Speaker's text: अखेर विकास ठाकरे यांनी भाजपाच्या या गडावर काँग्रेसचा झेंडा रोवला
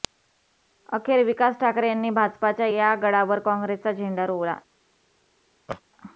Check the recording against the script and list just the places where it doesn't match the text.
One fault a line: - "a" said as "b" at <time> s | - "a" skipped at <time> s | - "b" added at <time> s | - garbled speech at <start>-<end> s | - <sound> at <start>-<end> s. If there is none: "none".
- laugh at 5.7-5.8 s